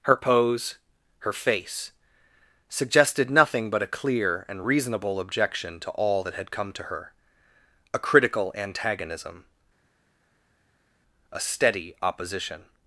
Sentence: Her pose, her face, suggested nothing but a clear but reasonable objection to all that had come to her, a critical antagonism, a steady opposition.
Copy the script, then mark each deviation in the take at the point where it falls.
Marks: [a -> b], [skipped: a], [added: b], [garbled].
Her pose, her face, suggested nothing but a clear [but -> and] reasonable objection to all that had come to her, a critical antagonism, a steady opposition.